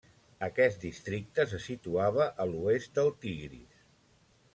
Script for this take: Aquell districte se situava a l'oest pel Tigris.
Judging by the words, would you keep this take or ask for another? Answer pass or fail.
fail